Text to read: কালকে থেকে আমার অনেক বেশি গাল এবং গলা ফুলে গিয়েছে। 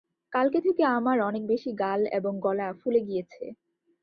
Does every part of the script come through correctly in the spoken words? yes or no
yes